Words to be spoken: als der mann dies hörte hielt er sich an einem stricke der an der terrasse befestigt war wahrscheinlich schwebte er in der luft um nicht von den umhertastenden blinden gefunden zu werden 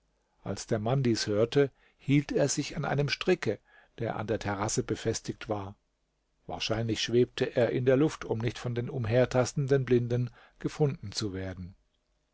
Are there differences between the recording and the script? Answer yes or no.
no